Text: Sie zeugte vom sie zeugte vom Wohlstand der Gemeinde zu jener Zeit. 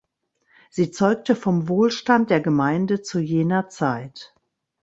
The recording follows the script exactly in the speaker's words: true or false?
false